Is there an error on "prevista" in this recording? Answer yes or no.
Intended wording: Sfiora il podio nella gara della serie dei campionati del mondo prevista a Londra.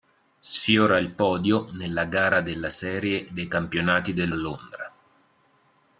yes